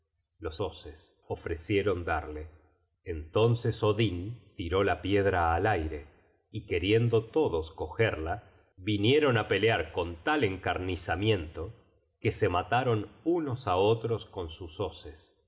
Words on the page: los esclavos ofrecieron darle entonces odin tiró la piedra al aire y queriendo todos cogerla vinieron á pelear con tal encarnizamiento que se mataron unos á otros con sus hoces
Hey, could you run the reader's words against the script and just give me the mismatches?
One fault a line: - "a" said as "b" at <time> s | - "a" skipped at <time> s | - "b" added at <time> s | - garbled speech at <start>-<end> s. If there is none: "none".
- "esclavos" said as "hoces" at 0.6 s